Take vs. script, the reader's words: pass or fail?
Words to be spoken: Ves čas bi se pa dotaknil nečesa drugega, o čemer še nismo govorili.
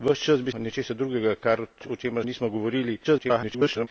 fail